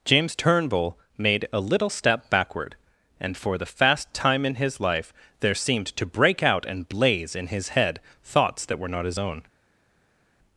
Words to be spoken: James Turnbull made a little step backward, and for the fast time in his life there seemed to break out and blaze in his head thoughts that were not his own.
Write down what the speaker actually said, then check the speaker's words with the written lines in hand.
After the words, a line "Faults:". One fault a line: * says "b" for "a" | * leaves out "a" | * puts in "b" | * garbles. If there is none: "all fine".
James Turnbull made a little step backward, and for the fast time in his life there seemed to break out and blaze in his head thoughts that were not his own.
Faults:
all fine